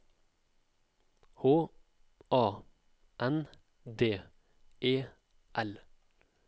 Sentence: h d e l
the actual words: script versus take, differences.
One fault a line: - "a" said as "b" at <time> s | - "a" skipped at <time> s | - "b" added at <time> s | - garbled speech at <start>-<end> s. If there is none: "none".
- "a n" added at 2.3 s